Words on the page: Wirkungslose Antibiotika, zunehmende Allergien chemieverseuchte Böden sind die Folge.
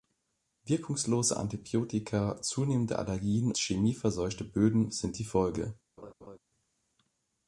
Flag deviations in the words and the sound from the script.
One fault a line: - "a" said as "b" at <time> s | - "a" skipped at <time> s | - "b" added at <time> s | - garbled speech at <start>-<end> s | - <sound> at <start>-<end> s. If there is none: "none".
- laugh at 6.0-6.4 s